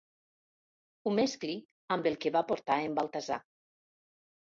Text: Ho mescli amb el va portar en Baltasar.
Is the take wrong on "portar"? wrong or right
right